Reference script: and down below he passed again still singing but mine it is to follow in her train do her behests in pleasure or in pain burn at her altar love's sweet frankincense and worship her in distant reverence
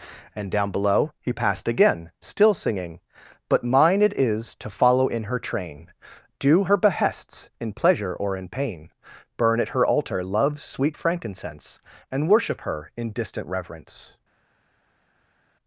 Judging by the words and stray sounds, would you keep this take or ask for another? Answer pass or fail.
pass